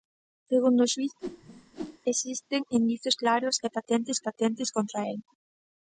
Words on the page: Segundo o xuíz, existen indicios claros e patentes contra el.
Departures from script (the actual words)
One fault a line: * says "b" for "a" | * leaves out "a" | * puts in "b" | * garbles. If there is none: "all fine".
* puts in "patentes"